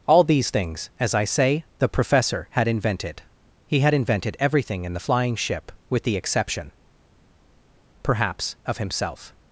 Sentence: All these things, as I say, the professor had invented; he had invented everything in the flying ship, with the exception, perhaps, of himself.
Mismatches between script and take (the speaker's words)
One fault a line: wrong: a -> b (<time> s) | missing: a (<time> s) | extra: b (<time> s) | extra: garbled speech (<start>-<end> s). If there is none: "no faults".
no faults